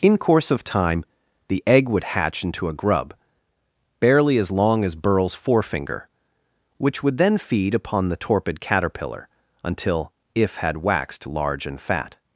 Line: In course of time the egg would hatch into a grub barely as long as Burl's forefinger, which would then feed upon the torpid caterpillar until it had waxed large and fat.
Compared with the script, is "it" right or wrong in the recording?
wrong